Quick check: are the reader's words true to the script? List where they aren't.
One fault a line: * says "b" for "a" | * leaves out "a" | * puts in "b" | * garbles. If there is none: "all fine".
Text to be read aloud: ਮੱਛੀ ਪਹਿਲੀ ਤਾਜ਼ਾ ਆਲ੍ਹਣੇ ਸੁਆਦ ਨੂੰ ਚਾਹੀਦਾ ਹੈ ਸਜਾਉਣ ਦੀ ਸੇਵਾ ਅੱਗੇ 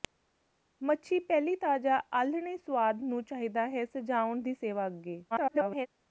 * garbles